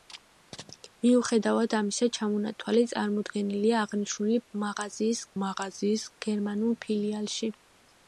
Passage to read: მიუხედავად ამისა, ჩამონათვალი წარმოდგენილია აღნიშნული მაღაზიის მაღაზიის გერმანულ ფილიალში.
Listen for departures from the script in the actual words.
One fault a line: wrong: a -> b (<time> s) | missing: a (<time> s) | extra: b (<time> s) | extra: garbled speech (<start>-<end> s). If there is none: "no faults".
no faults